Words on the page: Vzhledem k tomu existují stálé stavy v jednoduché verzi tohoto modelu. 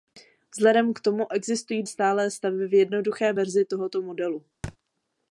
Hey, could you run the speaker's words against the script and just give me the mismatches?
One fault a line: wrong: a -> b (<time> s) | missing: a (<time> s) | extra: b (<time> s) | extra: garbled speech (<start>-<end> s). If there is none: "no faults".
no faults